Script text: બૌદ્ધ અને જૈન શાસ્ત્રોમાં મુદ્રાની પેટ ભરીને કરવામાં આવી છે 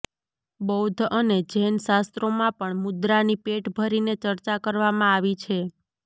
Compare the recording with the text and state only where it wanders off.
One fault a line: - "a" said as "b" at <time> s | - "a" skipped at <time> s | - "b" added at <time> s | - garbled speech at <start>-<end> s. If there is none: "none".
- "પણ" added at 2.6 s
- "ચર્ચા" added at 4.2 s